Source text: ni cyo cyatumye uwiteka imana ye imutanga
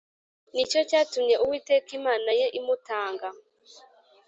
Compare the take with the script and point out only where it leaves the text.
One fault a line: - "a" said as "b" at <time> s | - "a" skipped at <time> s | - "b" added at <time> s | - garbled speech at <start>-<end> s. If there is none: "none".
none